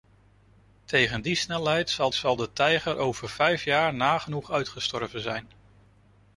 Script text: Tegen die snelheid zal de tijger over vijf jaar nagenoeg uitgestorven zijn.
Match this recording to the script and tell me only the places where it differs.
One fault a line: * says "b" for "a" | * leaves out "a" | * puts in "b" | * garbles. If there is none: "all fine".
* puts in "zal"